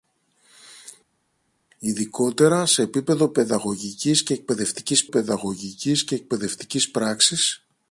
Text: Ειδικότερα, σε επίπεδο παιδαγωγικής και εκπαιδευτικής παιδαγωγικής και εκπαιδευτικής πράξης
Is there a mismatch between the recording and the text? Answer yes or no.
no